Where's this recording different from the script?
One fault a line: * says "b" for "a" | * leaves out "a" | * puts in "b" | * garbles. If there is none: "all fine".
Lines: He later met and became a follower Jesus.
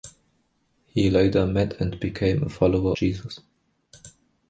all fine